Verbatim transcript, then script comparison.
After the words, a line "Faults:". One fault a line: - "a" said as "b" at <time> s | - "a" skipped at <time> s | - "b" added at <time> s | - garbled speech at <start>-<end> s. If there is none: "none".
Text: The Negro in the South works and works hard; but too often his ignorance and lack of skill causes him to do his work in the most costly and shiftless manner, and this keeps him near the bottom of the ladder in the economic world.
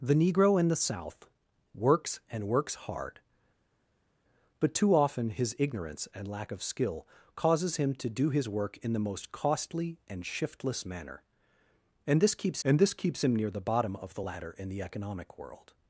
The Negro in the South works and works hard; but too often his ignorance and lack of skill causes him to do his work in the most costly and shiftless manner, and this keeps and this keeps him near the bottom of the ladder in the economic world.
Faults:
- "and this keeps" added at 12.6 s